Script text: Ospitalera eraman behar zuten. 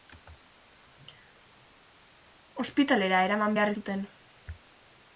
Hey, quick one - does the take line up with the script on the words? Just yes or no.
yes